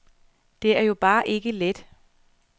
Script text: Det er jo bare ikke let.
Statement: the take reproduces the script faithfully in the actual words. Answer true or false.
true